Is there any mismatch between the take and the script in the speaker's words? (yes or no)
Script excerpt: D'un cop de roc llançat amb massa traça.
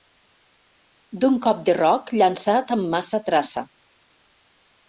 no